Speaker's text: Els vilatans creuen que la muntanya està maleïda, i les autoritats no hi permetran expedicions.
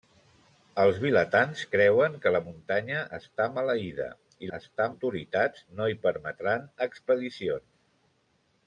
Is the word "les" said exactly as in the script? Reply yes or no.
no